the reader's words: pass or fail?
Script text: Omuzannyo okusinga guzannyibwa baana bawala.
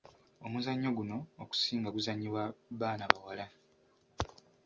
fail